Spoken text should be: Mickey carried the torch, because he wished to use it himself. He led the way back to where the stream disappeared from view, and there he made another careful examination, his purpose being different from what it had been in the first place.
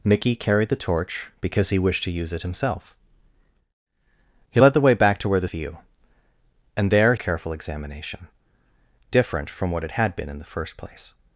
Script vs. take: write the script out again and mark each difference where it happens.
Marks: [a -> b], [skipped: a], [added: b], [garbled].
Mickey carried the torch, because he wished to use it himself. He led the way back to where the [skipped: stream disappeared from] view, and there [skipped: he made another] careful examination, [skipped: his purpose being] different from what it had been in the first place.